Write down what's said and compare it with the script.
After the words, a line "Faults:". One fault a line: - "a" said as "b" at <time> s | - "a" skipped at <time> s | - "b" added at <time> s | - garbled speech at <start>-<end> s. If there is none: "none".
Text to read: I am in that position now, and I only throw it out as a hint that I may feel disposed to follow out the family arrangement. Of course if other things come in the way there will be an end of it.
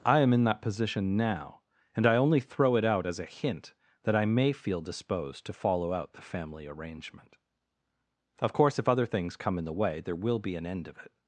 I am in that position now, and I only throw it out as a hint that I may feel disposed to follow out the family arrangement. Of course if other things come in the way there will be an end of it.
Faults:
none